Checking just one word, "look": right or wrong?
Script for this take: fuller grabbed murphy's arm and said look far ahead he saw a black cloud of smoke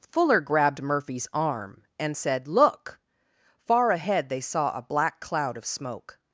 right